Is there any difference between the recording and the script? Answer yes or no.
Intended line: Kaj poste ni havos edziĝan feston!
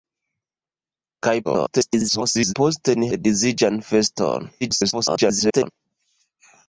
yes